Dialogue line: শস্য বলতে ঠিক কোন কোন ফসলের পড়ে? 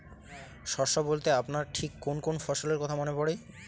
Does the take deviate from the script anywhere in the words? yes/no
yes